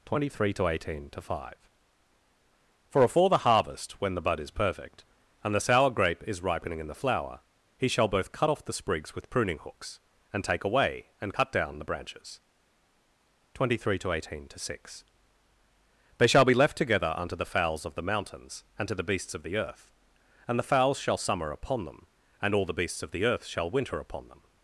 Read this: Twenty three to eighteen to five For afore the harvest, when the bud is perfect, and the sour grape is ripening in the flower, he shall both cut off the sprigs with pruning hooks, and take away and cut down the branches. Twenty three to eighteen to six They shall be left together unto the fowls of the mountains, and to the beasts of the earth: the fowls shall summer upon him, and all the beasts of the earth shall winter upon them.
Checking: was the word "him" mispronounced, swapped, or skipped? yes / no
yes